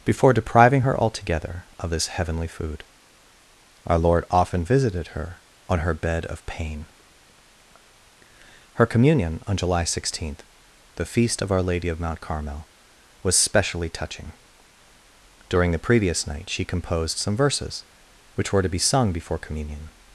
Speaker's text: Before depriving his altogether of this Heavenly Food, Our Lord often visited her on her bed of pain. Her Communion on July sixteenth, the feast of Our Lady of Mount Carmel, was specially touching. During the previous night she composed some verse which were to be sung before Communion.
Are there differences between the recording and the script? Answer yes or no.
yes